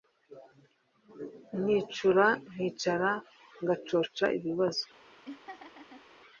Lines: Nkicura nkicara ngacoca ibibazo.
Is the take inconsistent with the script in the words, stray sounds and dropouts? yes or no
yes